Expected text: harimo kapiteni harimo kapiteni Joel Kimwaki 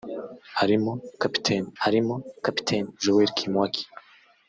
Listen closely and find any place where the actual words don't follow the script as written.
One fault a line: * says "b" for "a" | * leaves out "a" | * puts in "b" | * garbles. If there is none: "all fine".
all fine